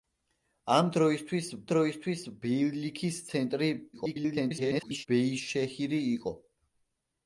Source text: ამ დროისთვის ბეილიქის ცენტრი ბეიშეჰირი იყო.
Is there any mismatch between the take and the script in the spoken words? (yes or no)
yes